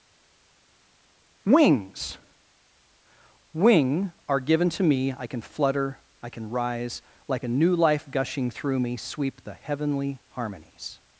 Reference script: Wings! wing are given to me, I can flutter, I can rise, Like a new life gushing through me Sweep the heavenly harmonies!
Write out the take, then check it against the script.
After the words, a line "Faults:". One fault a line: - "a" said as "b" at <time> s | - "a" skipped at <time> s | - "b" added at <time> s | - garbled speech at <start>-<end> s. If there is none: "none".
Wings! wing are given to me, I can flutter, I can rise, Like a new life gushing through me Sweep the heavenly harmonies!
Faults:
none